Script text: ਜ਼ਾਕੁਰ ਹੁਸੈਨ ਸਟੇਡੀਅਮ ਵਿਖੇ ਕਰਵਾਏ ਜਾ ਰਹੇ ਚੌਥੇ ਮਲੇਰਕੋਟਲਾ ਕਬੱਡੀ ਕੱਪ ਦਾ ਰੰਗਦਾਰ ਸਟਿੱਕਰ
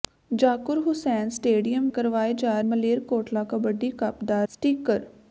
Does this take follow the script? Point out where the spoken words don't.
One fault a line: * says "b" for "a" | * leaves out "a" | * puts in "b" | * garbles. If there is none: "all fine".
* leaves out "ਵਿਖੇ"
* leaves out "ਰਹੇ ਚੌਥੇ"
* leaves out "ਰੰਗਦਾਰ"